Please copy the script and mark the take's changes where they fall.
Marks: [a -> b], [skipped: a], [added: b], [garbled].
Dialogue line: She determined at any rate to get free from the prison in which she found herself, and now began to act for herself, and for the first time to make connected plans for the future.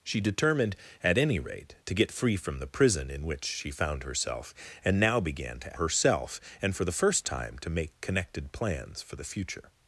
She determined at any rate to get free from the prison in which she found herself, and now began to [skipped: act for] herself, and for the first time to make connected plans for the future.